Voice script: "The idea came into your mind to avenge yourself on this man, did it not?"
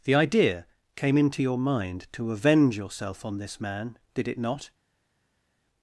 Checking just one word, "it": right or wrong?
right